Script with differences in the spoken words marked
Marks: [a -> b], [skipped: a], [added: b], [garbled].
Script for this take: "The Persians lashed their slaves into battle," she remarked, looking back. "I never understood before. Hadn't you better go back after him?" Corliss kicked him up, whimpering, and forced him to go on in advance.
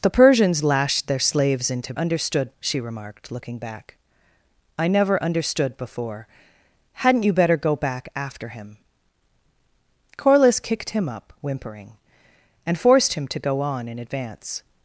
"The Persians lashed their slaves into [battle," -> understood] she remarked, looking back. "I never understood before. Hadn't you better go back after him?" Corliss kicked him up, whimpering, and forced him to go on in advance.